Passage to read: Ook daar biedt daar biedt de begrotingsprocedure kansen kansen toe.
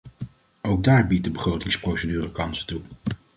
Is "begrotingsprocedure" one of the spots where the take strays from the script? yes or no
no